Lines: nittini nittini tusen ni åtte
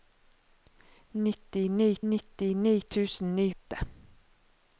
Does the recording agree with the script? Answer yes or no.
yes